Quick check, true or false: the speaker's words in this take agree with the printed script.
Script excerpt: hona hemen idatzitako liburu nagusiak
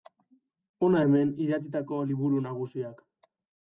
true